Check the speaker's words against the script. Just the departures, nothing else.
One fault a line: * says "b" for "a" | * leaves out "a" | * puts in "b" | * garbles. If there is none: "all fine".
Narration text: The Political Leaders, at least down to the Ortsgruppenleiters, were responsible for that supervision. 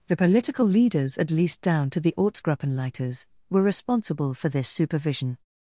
* says "this" for "that"